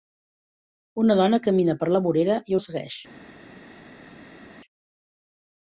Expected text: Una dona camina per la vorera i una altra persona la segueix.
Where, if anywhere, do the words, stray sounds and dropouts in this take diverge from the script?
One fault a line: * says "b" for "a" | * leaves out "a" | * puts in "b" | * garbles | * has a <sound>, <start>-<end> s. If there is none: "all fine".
* leaves out "una altra persona"